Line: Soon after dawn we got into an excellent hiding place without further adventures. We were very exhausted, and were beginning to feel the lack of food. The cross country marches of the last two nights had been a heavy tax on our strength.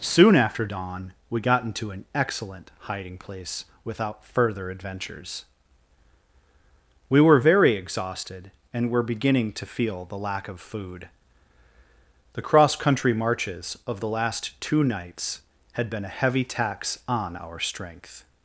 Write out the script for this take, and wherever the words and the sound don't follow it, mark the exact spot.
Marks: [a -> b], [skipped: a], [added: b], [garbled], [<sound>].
Soon after dawn we got into an excellent hiding place without further adventures. We were very exhausted, and were beginning to feel the lack of food. The cross country marches of the last two nights had been a heavy tax on our strength.